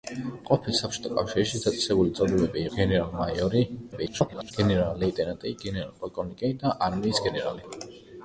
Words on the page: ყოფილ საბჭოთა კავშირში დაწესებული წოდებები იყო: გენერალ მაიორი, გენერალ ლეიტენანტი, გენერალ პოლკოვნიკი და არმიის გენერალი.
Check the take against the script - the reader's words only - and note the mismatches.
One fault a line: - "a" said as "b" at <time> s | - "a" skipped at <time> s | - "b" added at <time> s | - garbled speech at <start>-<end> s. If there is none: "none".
- "იყო" skipped at 2.6 s
- garbled speech at 3.9-4.5 s